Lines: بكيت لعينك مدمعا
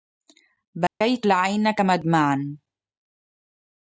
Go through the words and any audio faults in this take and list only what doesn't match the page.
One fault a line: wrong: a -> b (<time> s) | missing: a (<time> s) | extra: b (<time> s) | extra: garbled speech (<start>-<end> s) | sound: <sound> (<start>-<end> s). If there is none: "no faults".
sound: dropout (0.9-1.0 s)